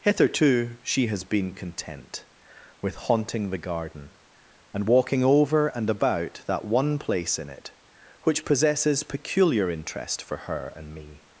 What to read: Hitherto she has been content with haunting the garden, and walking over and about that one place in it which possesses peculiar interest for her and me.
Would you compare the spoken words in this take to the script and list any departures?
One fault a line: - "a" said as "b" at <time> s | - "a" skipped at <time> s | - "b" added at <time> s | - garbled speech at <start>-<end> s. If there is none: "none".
none